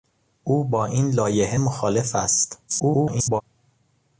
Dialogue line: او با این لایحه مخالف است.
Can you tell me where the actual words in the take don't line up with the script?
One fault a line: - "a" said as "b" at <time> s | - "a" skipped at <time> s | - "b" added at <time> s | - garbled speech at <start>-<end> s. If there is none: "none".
- garbled speech at 2.7-3.4 s